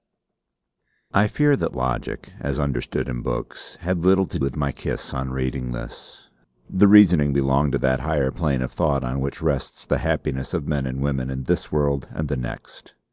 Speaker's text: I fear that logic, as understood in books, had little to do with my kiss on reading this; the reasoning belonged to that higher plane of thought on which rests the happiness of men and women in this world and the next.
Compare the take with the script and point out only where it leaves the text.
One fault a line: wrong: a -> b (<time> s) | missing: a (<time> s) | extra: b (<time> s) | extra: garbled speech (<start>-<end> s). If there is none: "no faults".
missing: do (4.4 s)